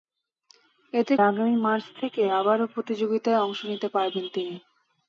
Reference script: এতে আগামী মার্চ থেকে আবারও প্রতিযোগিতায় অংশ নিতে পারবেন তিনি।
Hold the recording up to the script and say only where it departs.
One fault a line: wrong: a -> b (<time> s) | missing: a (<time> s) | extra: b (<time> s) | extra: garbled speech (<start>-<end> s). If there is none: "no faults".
no faults